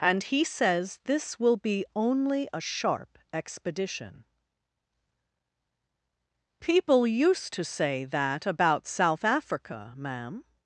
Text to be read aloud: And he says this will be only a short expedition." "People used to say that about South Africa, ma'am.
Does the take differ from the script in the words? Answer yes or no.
yes